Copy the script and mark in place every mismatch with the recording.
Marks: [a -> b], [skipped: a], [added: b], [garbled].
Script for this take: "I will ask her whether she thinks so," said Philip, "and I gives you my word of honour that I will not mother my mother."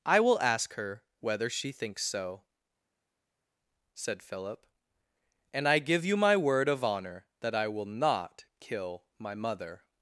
"I will ask her whether she thinks so," said Philip, "and I [gives -> give] you my word of honour that I will not [mother -> kill] my mother."